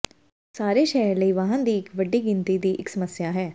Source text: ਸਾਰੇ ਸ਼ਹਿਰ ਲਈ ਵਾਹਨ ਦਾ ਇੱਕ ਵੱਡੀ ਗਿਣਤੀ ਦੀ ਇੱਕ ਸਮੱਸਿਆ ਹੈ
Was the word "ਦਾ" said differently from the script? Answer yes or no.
yes